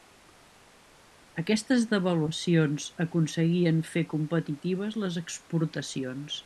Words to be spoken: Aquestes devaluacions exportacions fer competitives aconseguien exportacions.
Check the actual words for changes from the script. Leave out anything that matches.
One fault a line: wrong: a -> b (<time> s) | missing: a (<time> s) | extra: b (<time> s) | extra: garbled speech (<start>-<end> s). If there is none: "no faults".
wrong: exportacions -> aconseguien (3.0 s)
wrong: aconseguien -> les (5.0 s)